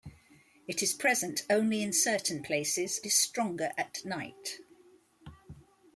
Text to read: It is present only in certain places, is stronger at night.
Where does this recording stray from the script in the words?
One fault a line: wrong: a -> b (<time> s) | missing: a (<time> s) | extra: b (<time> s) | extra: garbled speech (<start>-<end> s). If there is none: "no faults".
no faults